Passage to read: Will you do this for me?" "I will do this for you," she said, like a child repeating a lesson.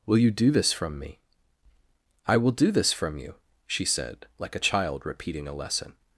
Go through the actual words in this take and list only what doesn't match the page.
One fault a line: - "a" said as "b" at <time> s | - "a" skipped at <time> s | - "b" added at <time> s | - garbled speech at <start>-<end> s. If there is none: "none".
- "for" said as "from" at 0.7 s
- "for" said as "from" at 2.9 s